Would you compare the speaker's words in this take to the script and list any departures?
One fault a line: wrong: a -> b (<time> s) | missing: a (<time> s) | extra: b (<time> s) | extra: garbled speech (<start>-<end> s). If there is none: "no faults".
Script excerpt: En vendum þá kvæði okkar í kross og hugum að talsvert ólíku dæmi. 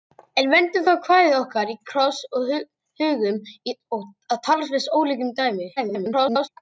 extra: garbled speech (5.8-6.5 s)